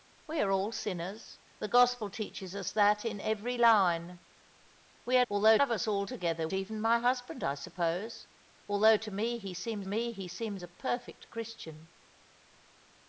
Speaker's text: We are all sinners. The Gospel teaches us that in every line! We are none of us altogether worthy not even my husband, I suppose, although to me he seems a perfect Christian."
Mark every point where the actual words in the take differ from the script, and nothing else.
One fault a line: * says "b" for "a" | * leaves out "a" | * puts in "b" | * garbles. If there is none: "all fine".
* says "although" for "none"
* leaves out "worthy not"
* puts in "me he seems"